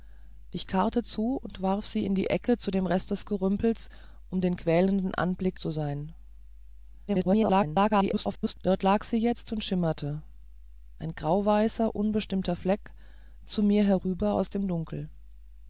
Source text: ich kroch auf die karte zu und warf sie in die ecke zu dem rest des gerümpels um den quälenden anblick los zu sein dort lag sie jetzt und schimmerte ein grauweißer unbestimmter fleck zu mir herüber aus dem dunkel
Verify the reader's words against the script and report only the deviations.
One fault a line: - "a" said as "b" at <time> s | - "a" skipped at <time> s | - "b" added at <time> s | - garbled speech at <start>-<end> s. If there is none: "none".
- "kroch auf die" skipped at 0.7 s
- "los" skipped at 5.6 s
- garbled speech at 7.1-8.5 s